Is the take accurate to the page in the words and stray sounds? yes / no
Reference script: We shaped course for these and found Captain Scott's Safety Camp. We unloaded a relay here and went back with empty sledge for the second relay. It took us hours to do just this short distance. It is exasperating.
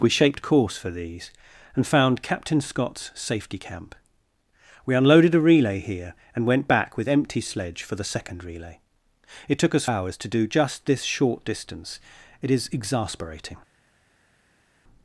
yes